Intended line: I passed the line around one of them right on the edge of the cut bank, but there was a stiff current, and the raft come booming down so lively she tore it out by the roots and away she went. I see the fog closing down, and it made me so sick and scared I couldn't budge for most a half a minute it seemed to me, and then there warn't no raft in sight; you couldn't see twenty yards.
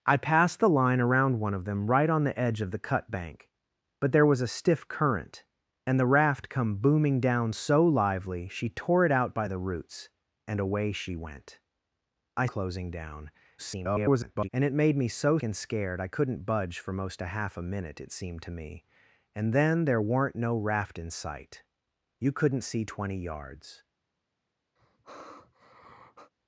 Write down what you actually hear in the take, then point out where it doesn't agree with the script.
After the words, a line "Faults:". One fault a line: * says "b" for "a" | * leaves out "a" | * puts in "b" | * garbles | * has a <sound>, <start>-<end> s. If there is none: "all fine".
I passed the line around one of them right on the edge of the cut bank, but there was a stiff current, and the raft come booming down so lively she tore it out by the roots and away she went. I closing down, [garbled] and it made me so and scared I couldn't budge for most a half a minute it seemed to me, and then there warn't no raft in sight; you couldn't see twenty yards.
Faults:
* leaves out "see the fog"
* garbles
* leaves out "sick"
* has a sigh, 24.8-26.3 s